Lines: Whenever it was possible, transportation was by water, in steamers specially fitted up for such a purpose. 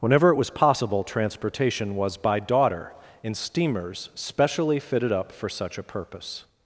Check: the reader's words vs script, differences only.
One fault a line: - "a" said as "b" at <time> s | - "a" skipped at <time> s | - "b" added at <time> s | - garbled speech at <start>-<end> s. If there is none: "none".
- "water" said as "daughter" at 2.4 s